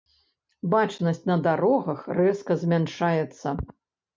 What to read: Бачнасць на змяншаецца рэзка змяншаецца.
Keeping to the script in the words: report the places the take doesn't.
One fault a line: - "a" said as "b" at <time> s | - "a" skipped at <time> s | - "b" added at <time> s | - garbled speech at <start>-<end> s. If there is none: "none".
- "змяншаецца" said as "дарогах" at 1.5 s